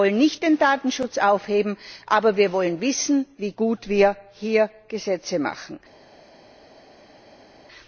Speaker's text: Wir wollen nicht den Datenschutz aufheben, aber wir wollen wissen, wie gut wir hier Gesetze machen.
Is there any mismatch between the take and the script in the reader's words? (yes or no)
no